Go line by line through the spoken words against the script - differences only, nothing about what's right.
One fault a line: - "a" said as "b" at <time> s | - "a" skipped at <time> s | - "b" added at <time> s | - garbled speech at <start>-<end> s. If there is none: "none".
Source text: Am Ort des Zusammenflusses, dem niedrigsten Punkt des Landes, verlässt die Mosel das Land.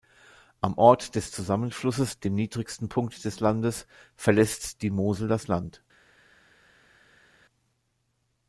none